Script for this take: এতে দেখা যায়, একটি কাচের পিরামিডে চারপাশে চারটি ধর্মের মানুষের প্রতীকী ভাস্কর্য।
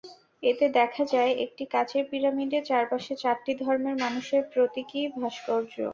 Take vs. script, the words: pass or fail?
pass